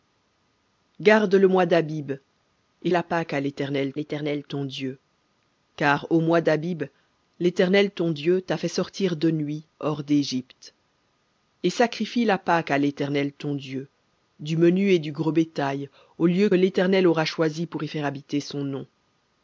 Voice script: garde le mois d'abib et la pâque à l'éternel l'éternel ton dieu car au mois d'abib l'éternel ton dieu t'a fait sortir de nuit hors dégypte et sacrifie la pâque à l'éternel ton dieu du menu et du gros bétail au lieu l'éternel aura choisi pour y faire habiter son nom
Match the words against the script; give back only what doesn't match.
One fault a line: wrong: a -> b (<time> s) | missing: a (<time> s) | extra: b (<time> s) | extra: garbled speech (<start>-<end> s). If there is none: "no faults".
no faults